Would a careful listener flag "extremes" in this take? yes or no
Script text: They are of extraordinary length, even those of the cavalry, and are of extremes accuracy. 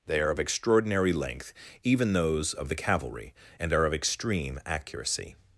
yes